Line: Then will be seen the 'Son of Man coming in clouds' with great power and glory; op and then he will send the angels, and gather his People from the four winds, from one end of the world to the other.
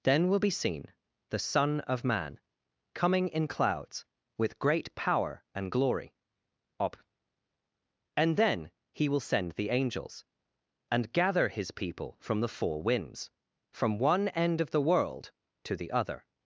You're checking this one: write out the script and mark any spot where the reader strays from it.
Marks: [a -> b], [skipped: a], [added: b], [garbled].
Then will be seen the 'Son of Man coming in clouds' with great power and glory; op and then he will send the angels, and gather his People from the four winds, from one end of the world to the other.